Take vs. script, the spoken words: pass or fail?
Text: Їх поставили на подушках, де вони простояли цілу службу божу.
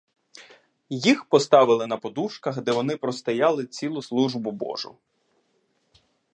pass